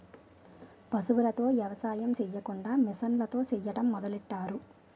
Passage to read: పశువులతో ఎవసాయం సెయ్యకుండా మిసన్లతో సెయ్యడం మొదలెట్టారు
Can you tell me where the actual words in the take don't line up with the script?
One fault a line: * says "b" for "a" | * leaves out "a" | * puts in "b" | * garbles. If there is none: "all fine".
all fine